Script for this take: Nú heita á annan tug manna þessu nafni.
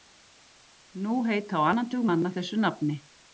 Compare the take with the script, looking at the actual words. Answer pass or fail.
pass